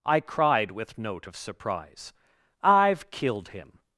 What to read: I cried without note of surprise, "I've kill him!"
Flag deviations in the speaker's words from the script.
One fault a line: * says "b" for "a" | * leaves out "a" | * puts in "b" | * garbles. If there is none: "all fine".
* says "with" for "without"
* says "killed" for "kill"